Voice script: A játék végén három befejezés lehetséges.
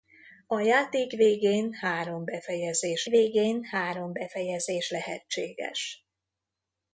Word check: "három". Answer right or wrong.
right